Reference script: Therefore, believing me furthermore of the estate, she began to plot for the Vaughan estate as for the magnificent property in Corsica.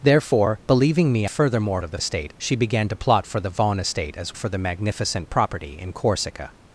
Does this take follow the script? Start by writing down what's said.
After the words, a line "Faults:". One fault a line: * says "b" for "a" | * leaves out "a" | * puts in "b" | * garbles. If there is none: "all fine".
Therefore, believing me furthermore of the estate, she began to plot for the Vaughan estate as for the magnificent property in Corsica.
Faults:
all fine